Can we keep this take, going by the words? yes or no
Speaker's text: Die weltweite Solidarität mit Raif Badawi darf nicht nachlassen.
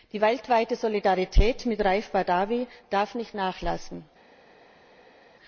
yes